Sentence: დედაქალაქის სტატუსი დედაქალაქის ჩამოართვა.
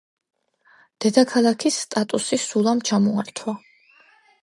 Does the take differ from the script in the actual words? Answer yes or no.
yes